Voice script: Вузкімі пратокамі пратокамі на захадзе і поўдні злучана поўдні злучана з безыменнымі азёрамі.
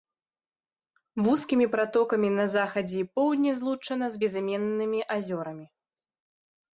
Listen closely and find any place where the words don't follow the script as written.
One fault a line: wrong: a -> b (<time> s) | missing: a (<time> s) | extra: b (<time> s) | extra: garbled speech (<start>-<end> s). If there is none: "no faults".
missing: пратокамі (2.3 s)
missing: поўдні злучана (4.0 s)